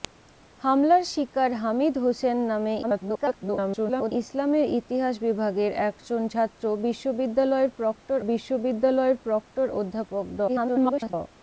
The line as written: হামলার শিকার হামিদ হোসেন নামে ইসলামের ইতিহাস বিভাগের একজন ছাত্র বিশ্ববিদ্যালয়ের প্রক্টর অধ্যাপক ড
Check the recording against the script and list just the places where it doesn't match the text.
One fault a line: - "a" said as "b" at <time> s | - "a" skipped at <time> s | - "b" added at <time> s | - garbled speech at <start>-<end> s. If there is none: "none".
- garbled speech at 2.8-4.1 s
- "বিশ্ববিদ্যালয়ের প্রক্টর" added at 8.3 s
- garbled speech at 10.5-11.1 s